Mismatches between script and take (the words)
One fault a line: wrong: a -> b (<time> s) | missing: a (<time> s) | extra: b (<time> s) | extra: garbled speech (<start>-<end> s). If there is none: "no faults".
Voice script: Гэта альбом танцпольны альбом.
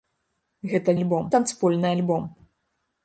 no faults